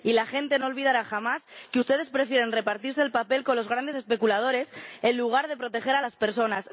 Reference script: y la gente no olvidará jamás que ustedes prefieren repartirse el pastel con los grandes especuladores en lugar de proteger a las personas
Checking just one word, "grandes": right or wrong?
right